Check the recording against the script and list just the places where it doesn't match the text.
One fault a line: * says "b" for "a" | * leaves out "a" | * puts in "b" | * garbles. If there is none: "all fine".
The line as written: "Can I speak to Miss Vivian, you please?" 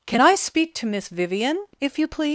* puts in "if"